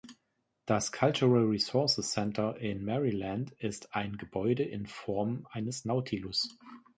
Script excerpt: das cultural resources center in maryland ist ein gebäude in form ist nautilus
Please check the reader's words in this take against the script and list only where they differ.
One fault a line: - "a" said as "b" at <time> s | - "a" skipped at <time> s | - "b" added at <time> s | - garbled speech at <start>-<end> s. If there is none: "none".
- "ist" said as "eines" at 5.5 s